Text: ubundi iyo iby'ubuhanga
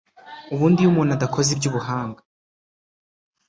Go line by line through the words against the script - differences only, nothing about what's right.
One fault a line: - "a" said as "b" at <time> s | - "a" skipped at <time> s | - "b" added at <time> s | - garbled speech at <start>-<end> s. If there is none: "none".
- "umuntu adakoze" added at 0.9 s